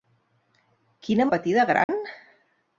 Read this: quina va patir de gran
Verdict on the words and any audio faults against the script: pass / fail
fail